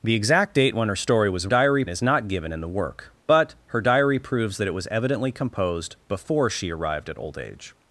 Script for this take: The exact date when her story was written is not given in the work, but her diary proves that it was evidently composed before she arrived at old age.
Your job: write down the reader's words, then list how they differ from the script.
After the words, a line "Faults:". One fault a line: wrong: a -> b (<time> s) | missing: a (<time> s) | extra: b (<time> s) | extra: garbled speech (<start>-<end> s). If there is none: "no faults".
The exact date when her story was diary is not given in the work, but her diary proves that it was evidently composed before she arrived at old age.
Faults:
wrong: written -> diary (1.4 s)